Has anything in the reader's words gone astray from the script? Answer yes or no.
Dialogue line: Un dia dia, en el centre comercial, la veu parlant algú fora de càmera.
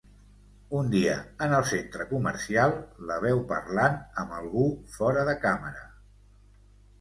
yes